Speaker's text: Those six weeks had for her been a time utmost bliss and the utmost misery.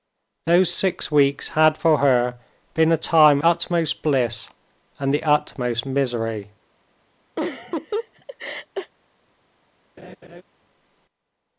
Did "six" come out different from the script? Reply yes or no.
no